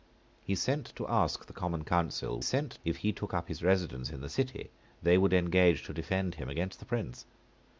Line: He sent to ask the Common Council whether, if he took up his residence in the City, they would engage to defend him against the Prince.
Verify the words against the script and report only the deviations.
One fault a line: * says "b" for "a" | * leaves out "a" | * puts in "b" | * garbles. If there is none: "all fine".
* says "sent" for "whether"